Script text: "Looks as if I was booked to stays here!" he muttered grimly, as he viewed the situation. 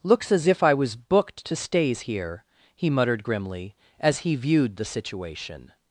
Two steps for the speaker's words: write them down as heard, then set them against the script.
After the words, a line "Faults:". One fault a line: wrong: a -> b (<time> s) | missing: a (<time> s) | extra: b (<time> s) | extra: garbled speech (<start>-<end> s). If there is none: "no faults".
"Looks as if I was booked to stays here!" he muttered grimly, as he viewed the situation.
Faults:
no faults